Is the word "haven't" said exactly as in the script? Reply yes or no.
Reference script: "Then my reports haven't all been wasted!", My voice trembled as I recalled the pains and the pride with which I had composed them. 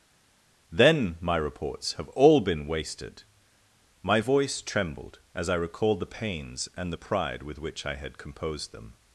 no